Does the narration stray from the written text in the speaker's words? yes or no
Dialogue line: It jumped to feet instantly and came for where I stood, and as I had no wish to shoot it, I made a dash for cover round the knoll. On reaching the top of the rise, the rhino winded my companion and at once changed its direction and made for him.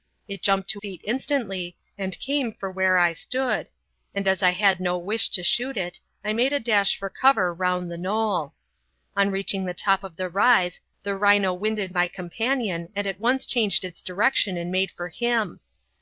no